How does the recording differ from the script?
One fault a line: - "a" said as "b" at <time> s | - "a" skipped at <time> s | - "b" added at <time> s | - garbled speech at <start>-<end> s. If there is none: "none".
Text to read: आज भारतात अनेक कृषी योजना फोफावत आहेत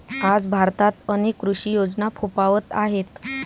none